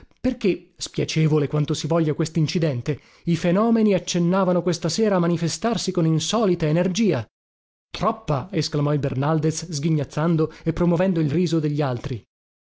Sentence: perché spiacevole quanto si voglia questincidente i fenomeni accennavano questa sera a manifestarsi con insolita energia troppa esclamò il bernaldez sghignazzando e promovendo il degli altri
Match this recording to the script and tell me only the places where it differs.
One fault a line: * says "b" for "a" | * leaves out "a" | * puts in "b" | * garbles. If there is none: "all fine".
* puts in "riso"